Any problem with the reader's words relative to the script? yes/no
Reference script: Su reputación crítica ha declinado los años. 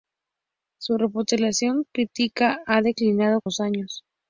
no